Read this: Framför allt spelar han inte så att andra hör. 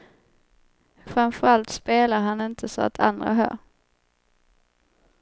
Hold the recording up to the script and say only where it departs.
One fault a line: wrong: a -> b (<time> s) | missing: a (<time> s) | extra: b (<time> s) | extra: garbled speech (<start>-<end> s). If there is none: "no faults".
no faults